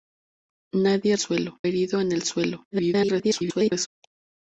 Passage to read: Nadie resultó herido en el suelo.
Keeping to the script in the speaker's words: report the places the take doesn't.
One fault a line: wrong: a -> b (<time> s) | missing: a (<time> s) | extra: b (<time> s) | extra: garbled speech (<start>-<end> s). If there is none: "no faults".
wrong: resultó -> suelo (1.2 s)
extra: garbled speech (2.7-3.9 s)